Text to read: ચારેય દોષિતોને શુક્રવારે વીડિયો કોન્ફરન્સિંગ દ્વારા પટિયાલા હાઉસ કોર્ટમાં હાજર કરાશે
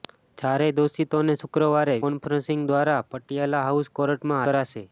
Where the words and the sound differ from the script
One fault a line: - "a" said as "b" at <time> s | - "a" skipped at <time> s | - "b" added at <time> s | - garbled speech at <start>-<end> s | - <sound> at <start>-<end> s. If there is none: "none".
- "વીડિયો" skipped at 2.0 s
- "હાજર" skipped at 4.4 s